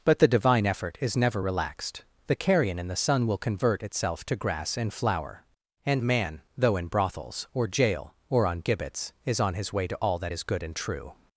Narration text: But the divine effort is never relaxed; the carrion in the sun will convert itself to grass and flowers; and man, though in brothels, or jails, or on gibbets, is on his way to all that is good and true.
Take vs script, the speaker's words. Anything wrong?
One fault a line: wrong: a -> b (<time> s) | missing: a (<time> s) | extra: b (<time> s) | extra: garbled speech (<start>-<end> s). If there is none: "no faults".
wrong: flowers -> flower (4.9 s)
wrong: jails -> jail (7.7 s)